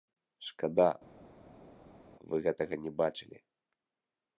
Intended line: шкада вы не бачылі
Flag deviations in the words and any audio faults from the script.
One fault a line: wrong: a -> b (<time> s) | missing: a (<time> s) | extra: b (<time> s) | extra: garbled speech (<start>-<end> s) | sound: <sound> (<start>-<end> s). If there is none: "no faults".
extra: гэтага (2.5 s)